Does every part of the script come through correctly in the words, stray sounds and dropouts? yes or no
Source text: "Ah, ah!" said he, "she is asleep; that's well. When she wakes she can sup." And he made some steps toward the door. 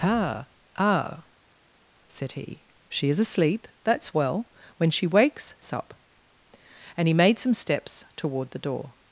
no